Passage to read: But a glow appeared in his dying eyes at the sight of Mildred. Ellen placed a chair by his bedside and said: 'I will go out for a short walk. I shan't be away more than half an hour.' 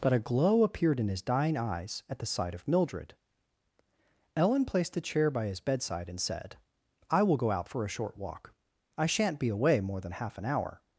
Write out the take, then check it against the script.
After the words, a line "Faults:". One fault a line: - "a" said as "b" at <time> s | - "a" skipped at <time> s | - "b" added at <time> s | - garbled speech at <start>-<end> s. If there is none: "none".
But a glow appeared in his dying eyes at the sight of Mildred. Ellen placed a chair by his bedside and said: 'I will go out for a short walk. I shan't be away more than half an hour.'
Faults:
none